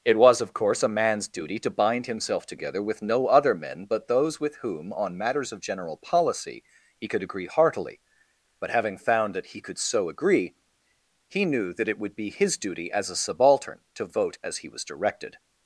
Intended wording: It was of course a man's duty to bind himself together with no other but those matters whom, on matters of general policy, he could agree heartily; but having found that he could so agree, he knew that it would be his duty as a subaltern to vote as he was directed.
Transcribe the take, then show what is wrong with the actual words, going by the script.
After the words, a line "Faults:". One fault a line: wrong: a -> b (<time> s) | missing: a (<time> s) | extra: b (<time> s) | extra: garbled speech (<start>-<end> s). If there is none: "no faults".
It was of course a man's duty to bind himself together with no other men but those with whom, on matters of general policy, he could agree heartily; but having found that he could so agree, he knew that it would be his duty as a subaltern to vote as he was directed.
Faults:
extra: men (3.5 s)
wrong: matters -> with (4.4 s)